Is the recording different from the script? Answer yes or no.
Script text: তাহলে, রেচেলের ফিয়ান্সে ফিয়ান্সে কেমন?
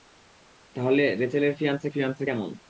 no